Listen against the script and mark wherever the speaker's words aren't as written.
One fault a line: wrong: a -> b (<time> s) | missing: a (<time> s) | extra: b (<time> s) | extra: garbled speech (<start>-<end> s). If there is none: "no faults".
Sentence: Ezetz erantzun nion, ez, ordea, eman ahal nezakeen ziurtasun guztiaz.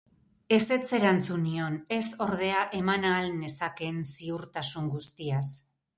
no faults